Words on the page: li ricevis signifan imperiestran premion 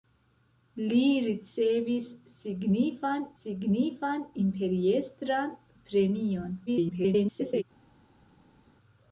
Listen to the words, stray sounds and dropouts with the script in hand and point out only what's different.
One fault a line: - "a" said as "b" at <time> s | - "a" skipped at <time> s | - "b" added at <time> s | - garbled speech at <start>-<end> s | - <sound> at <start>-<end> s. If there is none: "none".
- "signifan" added at 3.4 s
- garbled speech at 6.7-7.6 s